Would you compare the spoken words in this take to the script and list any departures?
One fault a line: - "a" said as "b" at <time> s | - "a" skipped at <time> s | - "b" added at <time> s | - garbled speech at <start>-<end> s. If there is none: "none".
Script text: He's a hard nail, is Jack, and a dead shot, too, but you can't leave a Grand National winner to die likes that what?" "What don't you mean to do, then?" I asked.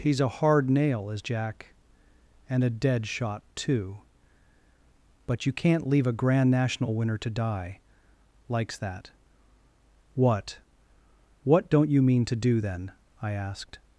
none